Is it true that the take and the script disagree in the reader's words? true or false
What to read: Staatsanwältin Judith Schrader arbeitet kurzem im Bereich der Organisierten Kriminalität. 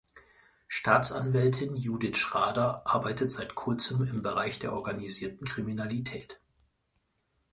true